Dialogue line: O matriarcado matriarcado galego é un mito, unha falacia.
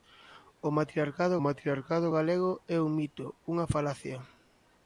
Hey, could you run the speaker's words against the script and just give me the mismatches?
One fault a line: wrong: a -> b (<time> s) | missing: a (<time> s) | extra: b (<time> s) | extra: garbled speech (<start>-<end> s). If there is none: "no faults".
no faults